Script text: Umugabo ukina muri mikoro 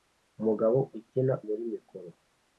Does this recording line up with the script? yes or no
yes